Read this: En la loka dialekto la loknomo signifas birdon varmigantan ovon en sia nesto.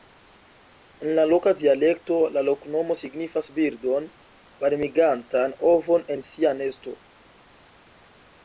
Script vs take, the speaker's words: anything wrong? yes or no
no